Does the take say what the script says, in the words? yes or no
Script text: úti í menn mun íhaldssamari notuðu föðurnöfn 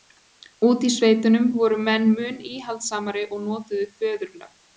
no